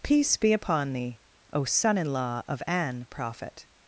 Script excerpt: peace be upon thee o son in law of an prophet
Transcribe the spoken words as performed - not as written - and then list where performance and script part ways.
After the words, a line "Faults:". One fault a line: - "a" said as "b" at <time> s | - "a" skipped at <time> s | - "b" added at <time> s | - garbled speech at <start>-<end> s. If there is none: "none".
peace be upon thee o son in law of an prophet
Faults:
none